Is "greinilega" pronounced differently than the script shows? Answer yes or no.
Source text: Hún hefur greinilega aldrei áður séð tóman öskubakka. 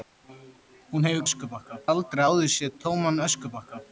yes